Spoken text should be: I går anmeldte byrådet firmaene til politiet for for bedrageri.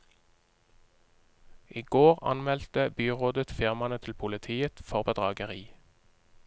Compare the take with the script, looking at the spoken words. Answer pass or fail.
fail